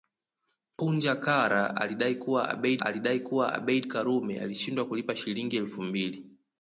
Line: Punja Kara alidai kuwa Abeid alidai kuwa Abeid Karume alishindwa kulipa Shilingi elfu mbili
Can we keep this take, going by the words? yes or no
yes